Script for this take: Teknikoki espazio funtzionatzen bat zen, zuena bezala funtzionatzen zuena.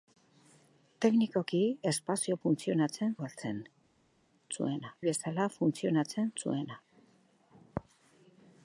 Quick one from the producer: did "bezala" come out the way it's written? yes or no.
yes